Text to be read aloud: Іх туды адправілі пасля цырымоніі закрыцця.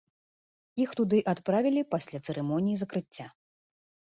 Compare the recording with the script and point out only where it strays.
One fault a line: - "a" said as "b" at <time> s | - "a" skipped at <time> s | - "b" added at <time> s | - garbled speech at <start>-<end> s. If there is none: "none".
none